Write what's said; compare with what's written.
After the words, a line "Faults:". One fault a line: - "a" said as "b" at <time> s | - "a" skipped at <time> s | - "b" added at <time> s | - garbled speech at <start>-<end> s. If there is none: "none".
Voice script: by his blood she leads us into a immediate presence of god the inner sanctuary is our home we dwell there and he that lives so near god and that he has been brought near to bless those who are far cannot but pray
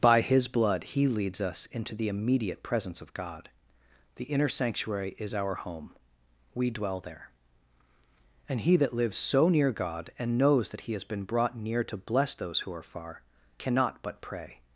by his blood he leads us into the immediate presence of god the inner sanctuary is our home we dwell there and he that lives so near god and knows that he has been brought near to bless those who are far cannot but pray
Faults:
- "she" said as "he" at 0.8 s
- "a" said as "the" at 1.9 s
- "knows" added at 10.4 s